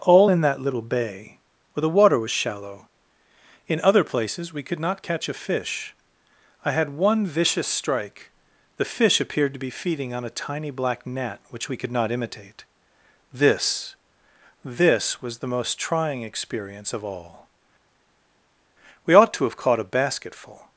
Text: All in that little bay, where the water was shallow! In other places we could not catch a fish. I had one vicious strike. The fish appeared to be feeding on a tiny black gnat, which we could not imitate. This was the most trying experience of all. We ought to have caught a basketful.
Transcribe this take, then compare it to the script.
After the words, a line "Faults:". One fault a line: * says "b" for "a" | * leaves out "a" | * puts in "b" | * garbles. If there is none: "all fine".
All in that little bay, where the water was shallow! In other places we could not catch a fish. I had one vicious strike. The fish appeared to be feeding on a tiny black gnat, which we could not imitate. This This was the most trying experience of all. We ought to have caught a basketful.
Faults:
* puts in "This"